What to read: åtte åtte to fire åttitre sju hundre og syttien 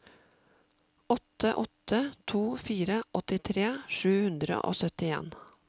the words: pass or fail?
pass